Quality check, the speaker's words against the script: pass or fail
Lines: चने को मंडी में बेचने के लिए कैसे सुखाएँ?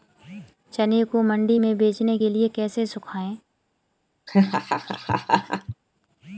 pass